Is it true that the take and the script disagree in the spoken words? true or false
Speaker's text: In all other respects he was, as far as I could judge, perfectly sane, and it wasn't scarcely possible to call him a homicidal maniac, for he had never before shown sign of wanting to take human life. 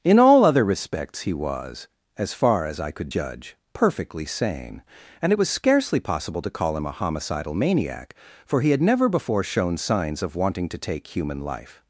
true